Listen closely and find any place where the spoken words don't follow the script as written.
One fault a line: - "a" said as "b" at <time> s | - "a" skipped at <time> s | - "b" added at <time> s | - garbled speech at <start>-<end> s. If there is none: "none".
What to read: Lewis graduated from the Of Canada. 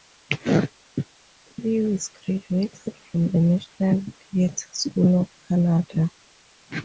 - "National Theatre School" added at 3.4 s